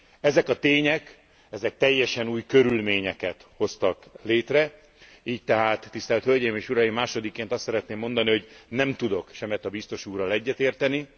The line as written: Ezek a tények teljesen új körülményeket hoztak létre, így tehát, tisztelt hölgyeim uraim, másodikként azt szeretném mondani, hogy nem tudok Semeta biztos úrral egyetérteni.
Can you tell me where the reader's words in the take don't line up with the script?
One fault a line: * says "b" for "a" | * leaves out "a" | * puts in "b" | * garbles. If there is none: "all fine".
* puts in "és"